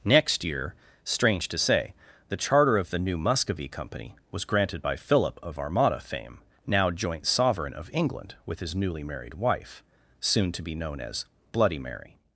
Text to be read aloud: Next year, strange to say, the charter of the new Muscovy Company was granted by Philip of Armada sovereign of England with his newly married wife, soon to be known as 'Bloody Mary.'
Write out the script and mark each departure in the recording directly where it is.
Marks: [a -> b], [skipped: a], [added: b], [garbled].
Next year, strange to say, the charter of the new Muscovy Company was granted by Philip of Armada [added: fame now joint] sovereign of England with his newly married wife, soon to be known as 'Bloody Mary.'